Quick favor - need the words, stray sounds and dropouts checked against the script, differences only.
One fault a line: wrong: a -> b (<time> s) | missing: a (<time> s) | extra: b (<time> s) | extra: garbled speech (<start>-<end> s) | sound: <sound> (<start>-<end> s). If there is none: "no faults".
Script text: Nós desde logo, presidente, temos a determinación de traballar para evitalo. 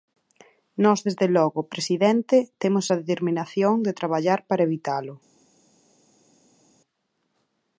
no faults